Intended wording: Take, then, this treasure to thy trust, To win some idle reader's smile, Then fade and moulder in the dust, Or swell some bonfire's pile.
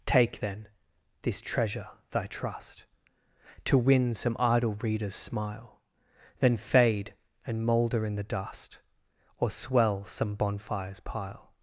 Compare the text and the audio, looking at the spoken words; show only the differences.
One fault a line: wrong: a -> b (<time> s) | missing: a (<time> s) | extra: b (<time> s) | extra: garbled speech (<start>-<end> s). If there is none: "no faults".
missing: to (1.9 s)